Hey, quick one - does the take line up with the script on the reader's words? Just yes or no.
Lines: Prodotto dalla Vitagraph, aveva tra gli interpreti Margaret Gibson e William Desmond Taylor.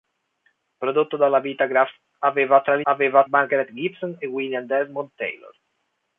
no